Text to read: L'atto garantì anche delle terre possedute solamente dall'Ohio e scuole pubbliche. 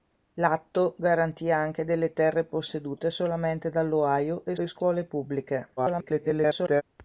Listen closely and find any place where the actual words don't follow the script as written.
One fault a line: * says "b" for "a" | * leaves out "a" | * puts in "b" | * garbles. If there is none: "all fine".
* puts in "e"
* garbles